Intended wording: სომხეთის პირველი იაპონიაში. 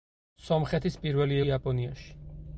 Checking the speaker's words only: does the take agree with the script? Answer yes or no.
yes